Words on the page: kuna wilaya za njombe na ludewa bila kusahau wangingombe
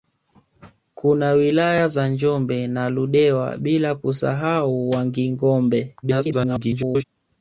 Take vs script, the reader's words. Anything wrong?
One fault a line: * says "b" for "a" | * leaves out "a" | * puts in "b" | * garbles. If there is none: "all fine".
* garbles